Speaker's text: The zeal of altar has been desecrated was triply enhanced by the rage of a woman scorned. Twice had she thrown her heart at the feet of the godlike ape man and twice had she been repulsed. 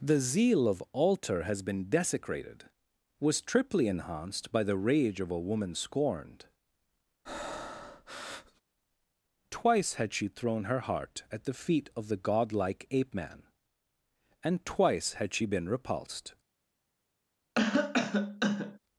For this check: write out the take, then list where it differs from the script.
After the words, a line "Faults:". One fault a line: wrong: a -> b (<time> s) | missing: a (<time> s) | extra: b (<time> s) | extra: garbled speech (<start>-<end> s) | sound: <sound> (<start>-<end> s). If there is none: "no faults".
The zeal of altar has been desecrated was triply enhanced by the rage of a woman scorned. Twice had she thrown her heart at the feet of the godlike ape man and twice had she been repulsed.
Faults:
sound: breath (7.2-8.6 s)
sound: cough (17.6-18.8 s)